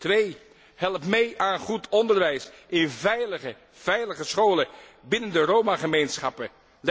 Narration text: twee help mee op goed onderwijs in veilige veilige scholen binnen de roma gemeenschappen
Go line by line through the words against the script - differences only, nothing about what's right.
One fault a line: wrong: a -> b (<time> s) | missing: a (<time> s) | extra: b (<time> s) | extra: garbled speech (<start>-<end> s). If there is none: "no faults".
wrong: op -> aan (1.4 s)